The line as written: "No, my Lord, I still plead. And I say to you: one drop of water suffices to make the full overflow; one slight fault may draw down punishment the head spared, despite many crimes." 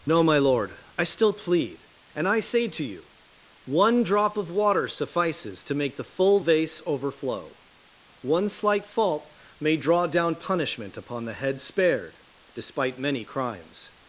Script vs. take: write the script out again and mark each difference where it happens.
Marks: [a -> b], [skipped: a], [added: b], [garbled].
"No, my Lord, I still plead. And I say to you: one drop of water suffices to make the full [added: vase] overflow; one slight fault may draw down punishment [added: upon] the head spared, despite many crimes."